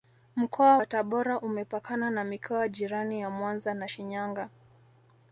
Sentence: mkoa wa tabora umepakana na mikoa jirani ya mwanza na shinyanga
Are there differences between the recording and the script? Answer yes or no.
no